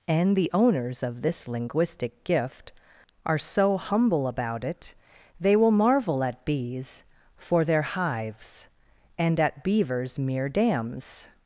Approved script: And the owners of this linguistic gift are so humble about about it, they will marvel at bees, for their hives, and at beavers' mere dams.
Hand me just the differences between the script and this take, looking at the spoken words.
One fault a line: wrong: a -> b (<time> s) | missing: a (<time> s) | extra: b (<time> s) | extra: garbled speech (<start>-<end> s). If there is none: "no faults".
missing: about (4.6 s)